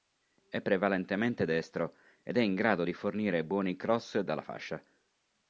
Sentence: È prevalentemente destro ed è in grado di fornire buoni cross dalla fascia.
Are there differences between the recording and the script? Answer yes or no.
no